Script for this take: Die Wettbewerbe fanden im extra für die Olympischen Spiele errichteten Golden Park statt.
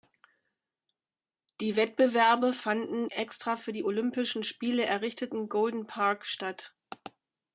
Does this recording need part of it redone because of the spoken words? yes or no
yes